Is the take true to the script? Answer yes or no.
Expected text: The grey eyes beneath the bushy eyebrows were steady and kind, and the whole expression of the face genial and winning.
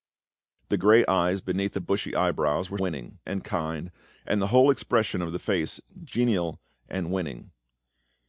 no